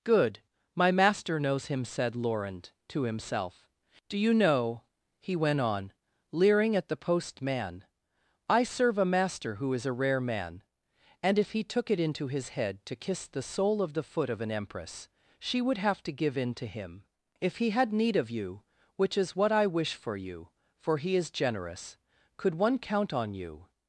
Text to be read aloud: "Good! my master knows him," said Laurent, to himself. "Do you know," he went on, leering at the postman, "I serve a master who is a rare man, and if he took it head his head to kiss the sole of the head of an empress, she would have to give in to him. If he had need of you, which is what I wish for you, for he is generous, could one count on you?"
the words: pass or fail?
fail